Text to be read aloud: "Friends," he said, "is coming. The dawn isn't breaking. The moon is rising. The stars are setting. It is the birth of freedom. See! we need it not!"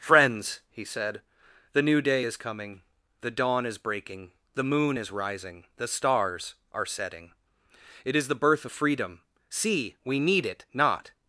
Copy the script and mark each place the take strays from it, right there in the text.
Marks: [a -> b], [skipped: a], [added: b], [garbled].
"Friends," he said, [added: the new day] "is coming. The dawn [isn't -> is] breaking. The moon is rising. The stars are setting. It is the birth of freedom. See! we need it not!"